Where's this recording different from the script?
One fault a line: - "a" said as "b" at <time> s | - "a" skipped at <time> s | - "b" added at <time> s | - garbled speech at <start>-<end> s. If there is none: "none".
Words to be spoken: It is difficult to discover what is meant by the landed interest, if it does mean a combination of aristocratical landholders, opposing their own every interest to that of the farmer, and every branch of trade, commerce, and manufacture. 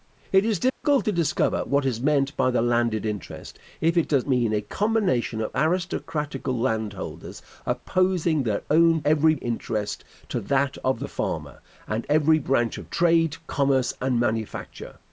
none